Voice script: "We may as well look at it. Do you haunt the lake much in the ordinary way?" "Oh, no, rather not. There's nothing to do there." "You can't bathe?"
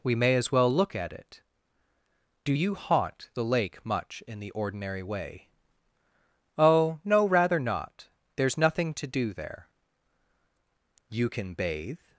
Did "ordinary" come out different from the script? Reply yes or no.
no